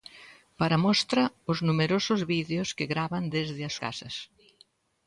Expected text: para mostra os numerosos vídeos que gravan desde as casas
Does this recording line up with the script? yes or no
yes